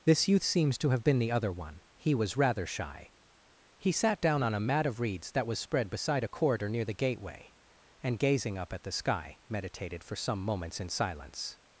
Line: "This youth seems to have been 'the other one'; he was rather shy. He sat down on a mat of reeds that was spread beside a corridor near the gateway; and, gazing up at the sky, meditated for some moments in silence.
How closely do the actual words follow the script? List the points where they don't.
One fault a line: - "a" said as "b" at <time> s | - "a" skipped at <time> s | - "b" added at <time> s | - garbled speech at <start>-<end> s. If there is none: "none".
none